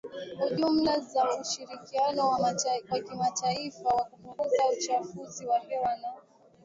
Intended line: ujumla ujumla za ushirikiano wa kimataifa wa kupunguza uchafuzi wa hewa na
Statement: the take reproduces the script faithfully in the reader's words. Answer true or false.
false